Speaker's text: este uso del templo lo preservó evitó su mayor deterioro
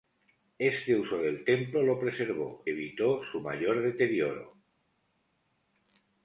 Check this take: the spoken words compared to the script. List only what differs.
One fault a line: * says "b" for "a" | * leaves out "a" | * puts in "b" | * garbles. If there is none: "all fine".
all fine